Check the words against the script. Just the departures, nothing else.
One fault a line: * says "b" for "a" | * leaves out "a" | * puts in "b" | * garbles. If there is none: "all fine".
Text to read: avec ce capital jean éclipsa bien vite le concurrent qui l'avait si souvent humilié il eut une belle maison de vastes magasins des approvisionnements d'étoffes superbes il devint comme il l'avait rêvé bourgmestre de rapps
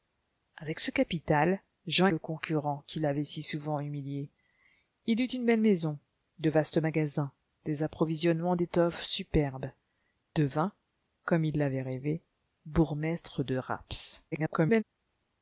* leaves out "éclipsa bien vite"
* leaves out "il"
* garbles